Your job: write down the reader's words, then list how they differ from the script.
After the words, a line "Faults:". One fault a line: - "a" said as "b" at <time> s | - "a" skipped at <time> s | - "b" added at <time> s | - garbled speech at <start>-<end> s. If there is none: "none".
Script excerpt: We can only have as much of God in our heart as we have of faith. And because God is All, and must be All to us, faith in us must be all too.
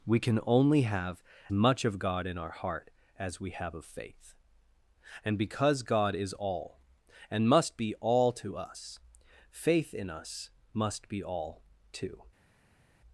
We can only have much of God in our heart as we have of faith. And because God is All, and must be All to us, faith in us must be all too.
Faults:
- "as" skipped at 1.2 s